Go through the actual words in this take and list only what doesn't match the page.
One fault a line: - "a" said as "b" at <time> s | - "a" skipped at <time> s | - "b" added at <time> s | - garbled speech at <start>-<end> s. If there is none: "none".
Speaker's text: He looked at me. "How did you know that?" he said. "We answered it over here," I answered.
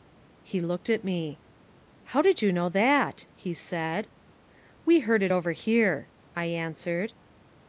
- "answered" said as "heard" at 5.0 s